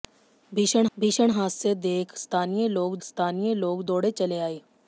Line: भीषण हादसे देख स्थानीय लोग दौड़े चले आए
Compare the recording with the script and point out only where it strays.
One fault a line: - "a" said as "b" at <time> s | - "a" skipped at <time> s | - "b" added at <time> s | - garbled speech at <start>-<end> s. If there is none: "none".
- "भीषण" added at 1.0 s
- "स्थानीय लोग" added at 3.0 s